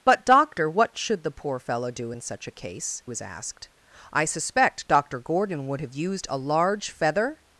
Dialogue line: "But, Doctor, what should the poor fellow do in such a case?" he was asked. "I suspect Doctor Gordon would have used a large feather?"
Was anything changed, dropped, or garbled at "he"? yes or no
yes